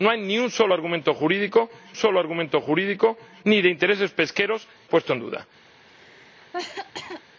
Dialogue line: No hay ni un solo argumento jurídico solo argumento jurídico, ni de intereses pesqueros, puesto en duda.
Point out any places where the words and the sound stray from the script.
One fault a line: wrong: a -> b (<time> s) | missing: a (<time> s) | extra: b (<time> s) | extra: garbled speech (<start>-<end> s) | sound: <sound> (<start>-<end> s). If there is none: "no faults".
sound: cough (5.9-7.2 s)